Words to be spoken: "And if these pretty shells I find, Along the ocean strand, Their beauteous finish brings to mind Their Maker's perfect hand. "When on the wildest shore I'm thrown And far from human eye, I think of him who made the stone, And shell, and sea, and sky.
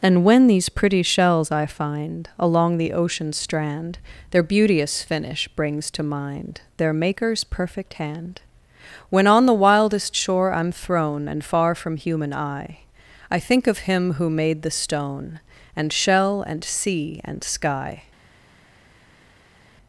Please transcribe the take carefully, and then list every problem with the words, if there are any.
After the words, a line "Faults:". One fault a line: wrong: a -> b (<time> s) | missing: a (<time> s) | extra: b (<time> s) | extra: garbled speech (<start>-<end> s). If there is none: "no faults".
"And when these pretty shells I find, Along the ocean strand, Their beauteous finish brings to mind Their Maker's perfect hand. "When on the wildest shore I'm thrown And far from human eye, I think of him who made the stone, And shell, and sea, and sky.
Faults:
wrong: if -> when (0.2 s)